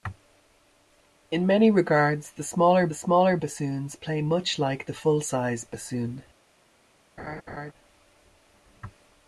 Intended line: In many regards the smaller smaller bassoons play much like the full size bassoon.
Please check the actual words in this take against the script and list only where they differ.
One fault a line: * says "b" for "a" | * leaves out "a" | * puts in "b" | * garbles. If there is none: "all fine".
all fine